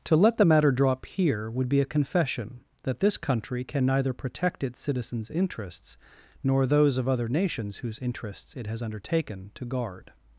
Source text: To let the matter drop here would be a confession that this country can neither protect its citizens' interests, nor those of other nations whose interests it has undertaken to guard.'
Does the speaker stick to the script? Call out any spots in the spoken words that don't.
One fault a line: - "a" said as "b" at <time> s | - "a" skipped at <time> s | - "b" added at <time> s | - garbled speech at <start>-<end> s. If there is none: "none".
none